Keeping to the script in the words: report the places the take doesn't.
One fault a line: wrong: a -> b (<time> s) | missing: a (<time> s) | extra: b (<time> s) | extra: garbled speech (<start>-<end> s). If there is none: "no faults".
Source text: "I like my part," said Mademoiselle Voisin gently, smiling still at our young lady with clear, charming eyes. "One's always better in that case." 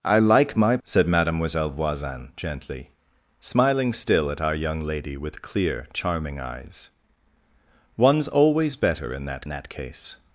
missing: part (0.8 s)
extra: that (9.5 s)